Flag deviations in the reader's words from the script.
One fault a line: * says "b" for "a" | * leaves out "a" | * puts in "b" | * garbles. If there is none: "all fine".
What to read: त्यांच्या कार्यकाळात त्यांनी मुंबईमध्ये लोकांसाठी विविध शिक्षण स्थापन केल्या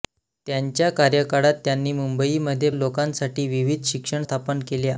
all fine